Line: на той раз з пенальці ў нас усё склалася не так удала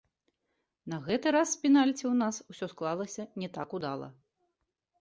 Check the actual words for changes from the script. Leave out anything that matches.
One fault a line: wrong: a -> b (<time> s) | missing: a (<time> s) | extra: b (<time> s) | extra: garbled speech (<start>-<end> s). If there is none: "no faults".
wrong: той -> гэты (1.1 s)